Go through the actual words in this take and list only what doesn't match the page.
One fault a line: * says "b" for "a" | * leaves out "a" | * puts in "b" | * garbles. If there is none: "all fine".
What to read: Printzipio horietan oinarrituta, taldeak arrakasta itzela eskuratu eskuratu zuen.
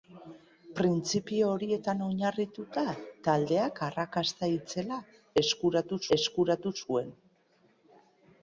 all fine